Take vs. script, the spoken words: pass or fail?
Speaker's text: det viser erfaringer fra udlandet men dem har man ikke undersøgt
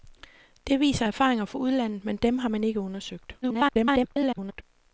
fail